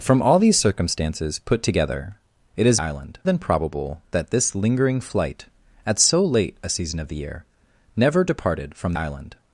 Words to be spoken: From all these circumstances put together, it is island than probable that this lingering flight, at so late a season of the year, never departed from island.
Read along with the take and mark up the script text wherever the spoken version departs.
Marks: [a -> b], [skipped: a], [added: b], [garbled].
From all these circumstances put together, it is island than probable that this lingering flight, at so late a season of the year, never departed from island.